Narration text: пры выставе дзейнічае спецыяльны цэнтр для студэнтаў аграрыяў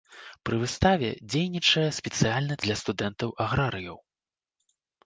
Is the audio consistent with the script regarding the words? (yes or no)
no